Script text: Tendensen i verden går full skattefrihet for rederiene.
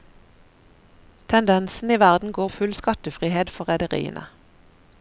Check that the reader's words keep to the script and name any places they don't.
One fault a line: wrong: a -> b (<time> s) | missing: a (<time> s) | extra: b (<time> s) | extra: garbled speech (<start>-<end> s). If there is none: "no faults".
no faults